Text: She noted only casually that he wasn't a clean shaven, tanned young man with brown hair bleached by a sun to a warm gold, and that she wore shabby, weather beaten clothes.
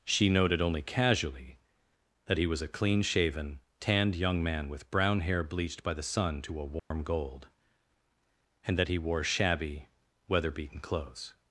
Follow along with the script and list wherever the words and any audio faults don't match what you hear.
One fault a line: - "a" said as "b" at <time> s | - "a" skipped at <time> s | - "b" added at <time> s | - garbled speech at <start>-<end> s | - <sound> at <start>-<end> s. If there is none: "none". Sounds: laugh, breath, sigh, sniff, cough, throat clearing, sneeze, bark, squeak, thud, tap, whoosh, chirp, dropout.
- "wasn't" said as "was" at 2.5 s
- "a" said as "the" at 5.9 s
- dropout at 6.8-6.9 s
- "she" said as "he" at 8.9 s